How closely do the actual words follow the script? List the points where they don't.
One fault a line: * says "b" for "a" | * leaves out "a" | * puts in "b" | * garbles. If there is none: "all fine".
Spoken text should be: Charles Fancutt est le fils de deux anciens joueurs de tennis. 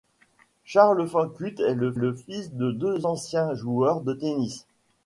* puts in "le"